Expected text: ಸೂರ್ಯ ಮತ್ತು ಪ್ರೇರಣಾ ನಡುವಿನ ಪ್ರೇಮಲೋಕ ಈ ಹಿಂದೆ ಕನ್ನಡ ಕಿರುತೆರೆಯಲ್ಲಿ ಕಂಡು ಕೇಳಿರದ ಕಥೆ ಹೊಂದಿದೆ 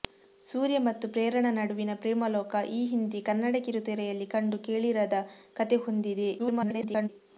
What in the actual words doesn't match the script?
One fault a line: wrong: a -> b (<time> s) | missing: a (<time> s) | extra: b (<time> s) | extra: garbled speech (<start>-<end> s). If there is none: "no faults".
extra: garbled speech (6.4-7.1 s)